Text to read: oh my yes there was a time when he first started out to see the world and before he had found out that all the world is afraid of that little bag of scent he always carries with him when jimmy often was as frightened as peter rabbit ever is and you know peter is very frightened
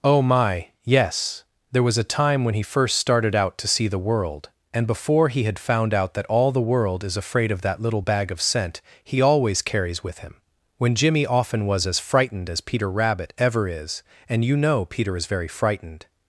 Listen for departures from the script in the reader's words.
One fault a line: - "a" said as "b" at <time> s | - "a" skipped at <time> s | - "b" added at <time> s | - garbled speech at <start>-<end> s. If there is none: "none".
none